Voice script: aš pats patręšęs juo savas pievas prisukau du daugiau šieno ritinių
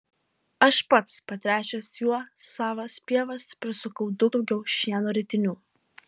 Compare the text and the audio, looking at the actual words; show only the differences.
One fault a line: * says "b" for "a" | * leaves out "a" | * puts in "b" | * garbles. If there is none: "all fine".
all fine